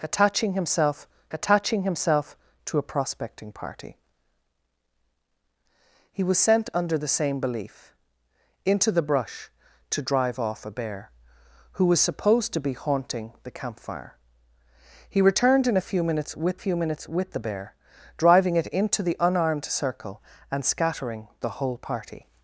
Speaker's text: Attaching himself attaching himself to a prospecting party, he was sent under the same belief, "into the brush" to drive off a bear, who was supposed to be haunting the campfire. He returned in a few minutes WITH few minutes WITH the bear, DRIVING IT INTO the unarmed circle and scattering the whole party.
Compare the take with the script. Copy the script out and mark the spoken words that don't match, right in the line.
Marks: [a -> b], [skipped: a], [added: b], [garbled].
Attaching himself attaching himself to a prospecting party, he was sent under the same belief, "into the brush" to drive off a bear, who was supposed to be haunting the campfire. He returned in a few minutes WITH few minutes WITH the bear, DRIVING IT INTO the unarmed circle and scattering the whole party.